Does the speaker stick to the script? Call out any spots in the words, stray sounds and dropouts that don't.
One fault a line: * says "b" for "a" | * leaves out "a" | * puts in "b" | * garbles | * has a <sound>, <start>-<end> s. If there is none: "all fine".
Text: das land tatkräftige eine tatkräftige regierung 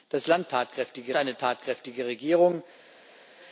all fine